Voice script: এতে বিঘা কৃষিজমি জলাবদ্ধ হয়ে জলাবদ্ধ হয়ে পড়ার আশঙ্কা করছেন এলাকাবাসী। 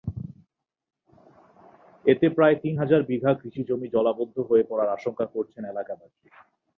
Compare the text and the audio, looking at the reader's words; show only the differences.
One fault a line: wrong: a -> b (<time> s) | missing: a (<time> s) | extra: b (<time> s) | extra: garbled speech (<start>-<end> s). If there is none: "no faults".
extra: প্রায় তিন হাজার (2.3 s)
missing: জলাবদ্ধ হয়ে (4.6 s)